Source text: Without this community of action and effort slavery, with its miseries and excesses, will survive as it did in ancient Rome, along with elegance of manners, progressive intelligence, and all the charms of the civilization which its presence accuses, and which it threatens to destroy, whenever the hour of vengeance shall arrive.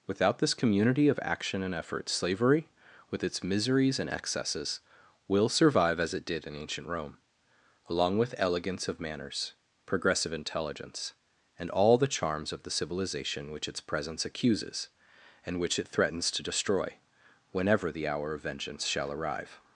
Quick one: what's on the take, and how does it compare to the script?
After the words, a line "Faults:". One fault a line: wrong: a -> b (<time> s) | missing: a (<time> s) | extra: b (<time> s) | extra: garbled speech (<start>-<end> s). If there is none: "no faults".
Without this community of action and effort slavery, with its miseries and excesses, will survive as it did in ancient Rome, along with elegance of manners, progressive intelligence, and all the charms of the civilization which its presence accuses, and which it threatens to destroy, whenever the hour of vengeance shall arrive.
Faults:
no faults